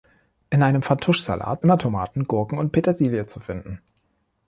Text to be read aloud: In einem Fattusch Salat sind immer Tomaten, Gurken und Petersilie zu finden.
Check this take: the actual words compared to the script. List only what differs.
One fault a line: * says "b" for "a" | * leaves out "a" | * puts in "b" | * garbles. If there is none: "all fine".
* leaves out "sind"